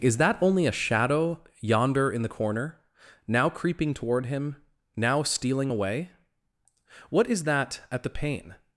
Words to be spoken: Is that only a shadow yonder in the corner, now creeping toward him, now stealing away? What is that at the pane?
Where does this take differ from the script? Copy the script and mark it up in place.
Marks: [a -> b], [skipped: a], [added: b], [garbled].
Is that only a shadow yonder in the corner, now creeping toward him, now stealing away? What is that at the pane?